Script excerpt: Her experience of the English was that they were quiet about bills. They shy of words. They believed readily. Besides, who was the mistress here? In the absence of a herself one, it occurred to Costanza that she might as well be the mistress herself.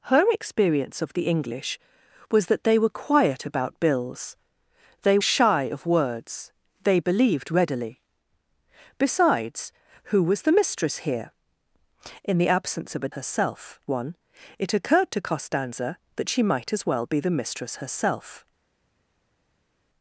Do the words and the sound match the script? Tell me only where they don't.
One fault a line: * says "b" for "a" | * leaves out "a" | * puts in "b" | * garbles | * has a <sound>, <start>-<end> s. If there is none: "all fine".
all fine